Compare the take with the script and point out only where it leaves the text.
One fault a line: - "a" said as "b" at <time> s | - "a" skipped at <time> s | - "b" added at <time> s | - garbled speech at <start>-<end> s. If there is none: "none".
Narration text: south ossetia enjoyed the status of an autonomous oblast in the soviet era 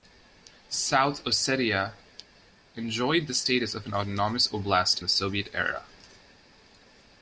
- "in" skipped at 5.0 s